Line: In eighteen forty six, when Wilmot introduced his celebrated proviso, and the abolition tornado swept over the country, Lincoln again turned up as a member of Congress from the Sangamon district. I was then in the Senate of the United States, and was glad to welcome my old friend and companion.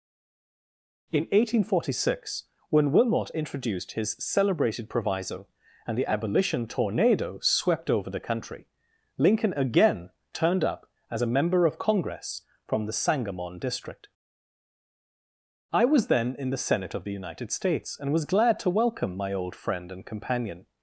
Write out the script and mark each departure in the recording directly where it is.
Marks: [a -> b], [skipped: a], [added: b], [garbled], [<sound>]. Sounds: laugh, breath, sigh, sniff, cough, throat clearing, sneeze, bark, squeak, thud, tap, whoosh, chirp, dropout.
In eighteen forty six, when Wilmot introduced his celebrated proviso, and the abolition tornado swept over the country, Lincoln again turned up as a member of Congress from the Sangamon district. I was then in the Senate of the United States, and was glad to welcome my old friend and companion.